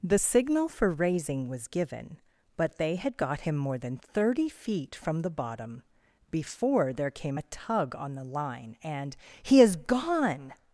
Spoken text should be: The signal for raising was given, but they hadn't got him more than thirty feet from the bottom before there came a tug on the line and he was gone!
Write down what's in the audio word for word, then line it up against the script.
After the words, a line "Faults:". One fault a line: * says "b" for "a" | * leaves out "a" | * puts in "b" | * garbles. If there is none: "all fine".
The signal for raising was given, but they had got him more than thirty feet from the bottom before there came a tug on the line and he is gone!
Faults:
* says "had" for "hadn't"
* says "is" for "was"